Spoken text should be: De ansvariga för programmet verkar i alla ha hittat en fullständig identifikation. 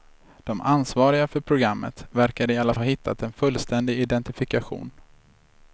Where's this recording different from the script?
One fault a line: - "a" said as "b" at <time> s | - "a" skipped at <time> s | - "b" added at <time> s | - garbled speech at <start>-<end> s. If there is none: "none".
none